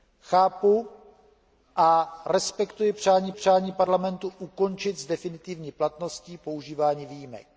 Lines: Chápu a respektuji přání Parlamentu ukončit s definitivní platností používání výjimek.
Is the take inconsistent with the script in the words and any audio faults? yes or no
yes